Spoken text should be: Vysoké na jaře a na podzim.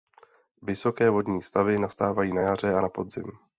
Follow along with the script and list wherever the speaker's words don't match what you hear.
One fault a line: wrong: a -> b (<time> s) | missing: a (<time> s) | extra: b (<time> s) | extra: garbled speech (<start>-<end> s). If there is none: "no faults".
extra: vodní stavy nastávají (1.1 s)